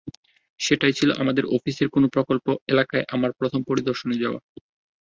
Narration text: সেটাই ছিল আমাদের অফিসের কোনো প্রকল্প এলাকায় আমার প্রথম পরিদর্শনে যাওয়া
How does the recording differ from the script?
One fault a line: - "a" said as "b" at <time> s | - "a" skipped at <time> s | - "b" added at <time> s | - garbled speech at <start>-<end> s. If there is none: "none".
none